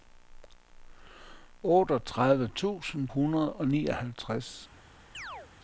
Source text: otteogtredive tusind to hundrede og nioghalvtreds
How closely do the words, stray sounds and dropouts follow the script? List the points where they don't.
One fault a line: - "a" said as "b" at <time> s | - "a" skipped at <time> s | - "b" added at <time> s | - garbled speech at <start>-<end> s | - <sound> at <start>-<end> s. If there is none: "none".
- "to" skipped at 3.1 s
- chirp at 5.1-5.5 s